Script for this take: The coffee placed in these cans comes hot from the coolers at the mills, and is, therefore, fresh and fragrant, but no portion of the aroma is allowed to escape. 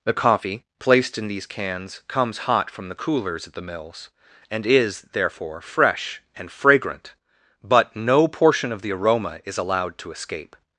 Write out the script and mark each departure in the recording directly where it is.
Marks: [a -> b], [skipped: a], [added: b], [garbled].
The coffee placed in these cans comes hot from the coolers at the mills, and is, therefore, fresh and fragrant, but no portion of the aroma is allowed to escape.